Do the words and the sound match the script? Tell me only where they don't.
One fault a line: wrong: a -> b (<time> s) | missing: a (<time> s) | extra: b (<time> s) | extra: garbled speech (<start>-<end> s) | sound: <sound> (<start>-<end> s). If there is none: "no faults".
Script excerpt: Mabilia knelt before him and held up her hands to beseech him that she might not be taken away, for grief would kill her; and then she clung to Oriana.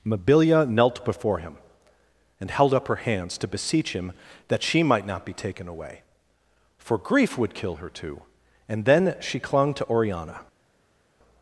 extra: too (7.9 s)